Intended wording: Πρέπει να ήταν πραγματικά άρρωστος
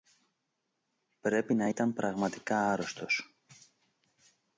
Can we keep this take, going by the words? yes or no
yes